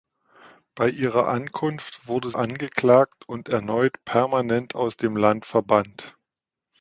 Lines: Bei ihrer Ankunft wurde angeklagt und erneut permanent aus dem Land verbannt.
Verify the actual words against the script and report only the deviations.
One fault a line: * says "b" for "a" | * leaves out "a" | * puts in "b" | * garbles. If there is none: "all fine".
all fine